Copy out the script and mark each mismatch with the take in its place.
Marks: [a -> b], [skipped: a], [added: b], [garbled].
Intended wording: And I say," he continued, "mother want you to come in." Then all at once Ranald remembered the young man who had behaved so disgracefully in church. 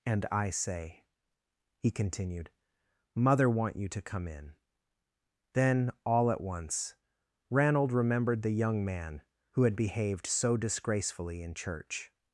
And I say," he continued, "mother want you to come in." Then all at once Ranald remembered the young man who had behaved so disgracefully in church.